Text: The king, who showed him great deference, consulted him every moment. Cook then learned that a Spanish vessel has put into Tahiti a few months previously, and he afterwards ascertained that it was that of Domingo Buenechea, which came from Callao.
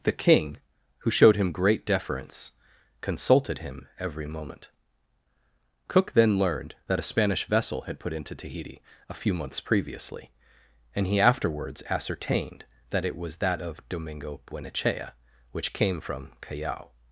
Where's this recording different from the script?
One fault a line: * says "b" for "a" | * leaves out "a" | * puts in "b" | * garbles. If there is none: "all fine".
* says "had" for "has"